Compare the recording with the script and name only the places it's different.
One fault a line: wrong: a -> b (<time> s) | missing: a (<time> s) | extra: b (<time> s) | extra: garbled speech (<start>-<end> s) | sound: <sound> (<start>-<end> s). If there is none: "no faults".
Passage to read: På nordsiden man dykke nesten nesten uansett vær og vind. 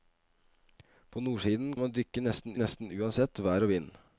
no faults